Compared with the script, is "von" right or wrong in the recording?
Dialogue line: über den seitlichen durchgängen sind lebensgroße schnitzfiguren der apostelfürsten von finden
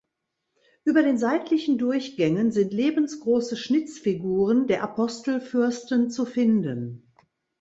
wrong